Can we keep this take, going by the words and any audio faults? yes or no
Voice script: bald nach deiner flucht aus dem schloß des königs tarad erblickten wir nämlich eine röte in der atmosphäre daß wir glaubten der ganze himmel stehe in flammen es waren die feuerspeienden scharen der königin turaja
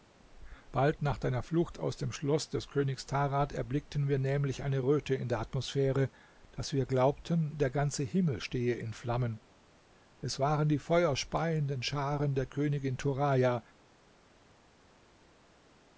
yes